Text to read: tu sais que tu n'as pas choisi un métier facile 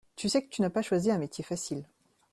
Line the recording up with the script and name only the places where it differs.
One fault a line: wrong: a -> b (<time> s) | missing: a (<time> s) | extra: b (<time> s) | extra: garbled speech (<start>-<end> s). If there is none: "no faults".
no faults